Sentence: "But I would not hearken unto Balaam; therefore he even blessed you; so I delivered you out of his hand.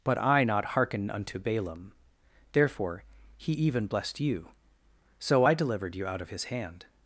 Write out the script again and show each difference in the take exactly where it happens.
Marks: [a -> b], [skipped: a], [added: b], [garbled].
"But I [skipped: would] not hearken unto Balaam; therefore he even blessed you; so I delivered you out of his hand.